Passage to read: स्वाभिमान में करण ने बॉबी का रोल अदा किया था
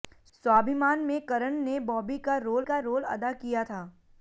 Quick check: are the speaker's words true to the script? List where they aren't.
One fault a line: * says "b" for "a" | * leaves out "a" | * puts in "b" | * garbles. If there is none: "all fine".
* puts in "का रोल"